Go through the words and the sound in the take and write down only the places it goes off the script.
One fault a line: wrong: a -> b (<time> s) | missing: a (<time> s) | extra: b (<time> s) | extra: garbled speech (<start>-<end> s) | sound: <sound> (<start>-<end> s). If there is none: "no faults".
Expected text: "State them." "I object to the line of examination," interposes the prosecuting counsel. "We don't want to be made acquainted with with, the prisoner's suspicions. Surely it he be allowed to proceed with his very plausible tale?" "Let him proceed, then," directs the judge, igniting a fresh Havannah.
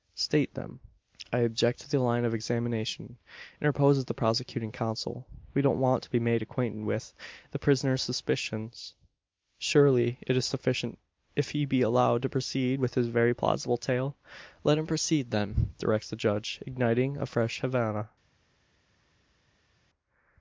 missing: with (7.1 s)
extra: is sufficient if (10.3 s)